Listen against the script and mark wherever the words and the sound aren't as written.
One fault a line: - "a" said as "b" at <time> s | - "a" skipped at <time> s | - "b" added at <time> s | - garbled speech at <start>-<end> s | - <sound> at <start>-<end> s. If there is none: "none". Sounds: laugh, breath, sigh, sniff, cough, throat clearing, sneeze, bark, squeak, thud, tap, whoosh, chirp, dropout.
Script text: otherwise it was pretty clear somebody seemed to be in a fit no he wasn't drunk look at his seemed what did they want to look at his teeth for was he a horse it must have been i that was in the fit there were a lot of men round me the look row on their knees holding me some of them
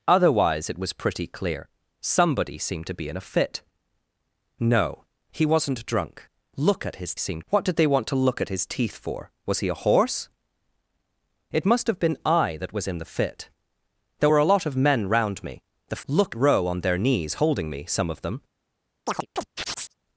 - chirp at 19.1-19.9 s